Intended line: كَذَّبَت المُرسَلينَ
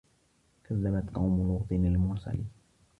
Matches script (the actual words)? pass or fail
fail